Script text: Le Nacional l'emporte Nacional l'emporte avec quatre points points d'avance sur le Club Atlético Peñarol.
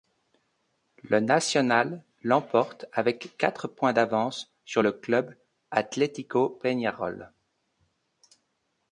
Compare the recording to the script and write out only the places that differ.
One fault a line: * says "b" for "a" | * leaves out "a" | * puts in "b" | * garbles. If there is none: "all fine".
* leaves out "Nacional l'emporte"
* leaves out "points"